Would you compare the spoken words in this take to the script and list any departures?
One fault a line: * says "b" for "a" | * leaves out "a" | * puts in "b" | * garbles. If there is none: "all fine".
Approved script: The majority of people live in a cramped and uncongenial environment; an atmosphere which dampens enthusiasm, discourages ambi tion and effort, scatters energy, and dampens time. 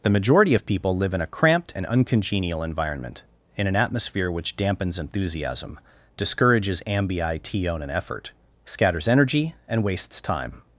* puts in "in"
* says "wastes" for "dampens"